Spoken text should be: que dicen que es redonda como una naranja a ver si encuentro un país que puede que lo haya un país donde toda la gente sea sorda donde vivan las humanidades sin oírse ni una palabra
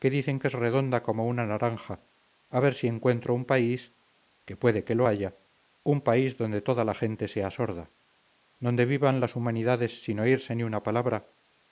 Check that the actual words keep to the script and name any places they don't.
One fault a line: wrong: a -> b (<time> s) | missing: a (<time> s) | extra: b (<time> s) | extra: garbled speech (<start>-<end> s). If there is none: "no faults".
no faults